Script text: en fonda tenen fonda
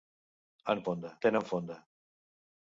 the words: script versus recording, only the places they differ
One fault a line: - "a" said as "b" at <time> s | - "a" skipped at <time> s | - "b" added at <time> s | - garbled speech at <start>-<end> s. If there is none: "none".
none